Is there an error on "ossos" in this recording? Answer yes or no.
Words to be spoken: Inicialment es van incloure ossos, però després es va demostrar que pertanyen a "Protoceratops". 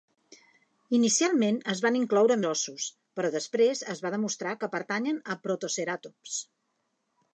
no